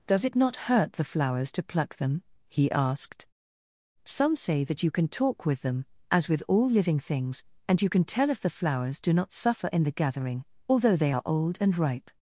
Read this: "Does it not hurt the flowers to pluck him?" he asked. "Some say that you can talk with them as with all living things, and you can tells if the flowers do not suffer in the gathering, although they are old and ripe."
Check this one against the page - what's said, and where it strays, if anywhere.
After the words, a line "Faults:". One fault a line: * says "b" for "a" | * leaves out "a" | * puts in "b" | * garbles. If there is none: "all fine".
"Does it not hurt the flowers to pluck them?" he asked. "Some say that you can talk with them as with all living things, and you can tell if the flowers do not suffer in the gathering, although they are old and ripe."
Faults:
* says "them" for "him"
* says "tell" for "tells"